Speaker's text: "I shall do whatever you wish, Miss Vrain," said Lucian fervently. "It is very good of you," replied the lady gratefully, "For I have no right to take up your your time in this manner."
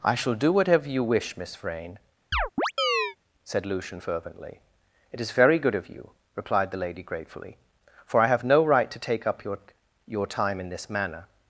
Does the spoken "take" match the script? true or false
true